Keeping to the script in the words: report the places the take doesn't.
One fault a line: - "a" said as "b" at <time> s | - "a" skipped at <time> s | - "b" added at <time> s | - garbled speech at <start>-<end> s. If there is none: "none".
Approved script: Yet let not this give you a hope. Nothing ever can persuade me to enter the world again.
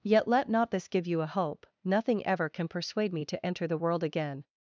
none